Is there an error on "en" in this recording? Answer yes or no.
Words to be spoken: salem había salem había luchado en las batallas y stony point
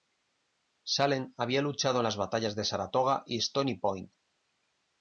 no